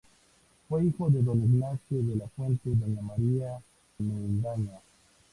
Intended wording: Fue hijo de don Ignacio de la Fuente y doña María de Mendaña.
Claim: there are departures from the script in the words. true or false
true